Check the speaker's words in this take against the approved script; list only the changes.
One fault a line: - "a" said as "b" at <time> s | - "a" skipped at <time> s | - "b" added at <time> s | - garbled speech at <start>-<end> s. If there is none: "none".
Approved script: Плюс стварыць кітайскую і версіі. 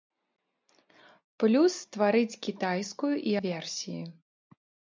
none